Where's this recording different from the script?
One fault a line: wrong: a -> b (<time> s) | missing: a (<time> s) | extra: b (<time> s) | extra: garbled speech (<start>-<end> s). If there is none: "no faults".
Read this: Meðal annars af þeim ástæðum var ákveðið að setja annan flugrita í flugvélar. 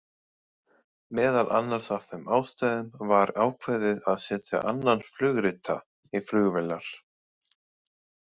no faults